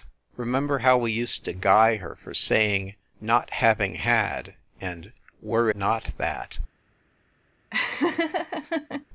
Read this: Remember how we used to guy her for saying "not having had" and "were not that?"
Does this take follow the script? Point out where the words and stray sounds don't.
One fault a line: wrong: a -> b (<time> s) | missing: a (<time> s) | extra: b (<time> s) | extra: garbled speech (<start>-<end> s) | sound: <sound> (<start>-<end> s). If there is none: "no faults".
sound: laugh (7.7-9.1 s)